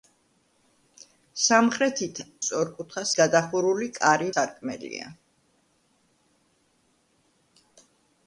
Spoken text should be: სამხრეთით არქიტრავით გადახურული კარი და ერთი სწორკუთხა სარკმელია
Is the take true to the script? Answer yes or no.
no